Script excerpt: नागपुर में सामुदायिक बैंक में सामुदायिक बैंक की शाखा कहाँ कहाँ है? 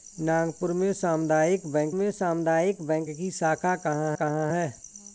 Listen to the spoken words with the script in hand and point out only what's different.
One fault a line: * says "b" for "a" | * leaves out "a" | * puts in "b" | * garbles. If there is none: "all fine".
all fine